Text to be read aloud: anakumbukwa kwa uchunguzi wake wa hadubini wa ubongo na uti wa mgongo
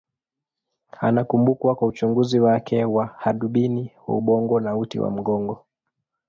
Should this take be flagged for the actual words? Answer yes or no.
no